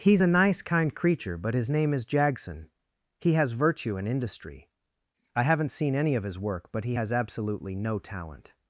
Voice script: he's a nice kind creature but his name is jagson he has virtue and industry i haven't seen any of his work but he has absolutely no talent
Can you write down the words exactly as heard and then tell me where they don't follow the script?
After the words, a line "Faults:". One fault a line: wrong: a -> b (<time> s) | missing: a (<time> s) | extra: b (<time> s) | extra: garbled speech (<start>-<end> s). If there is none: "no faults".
he's a nice kind creature but his name is jagson he has virtue and industry i haven't seen any of his work but he has absolutely no talent
Faults:
no faults